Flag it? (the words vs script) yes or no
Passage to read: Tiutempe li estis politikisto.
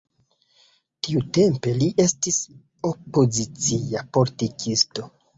yes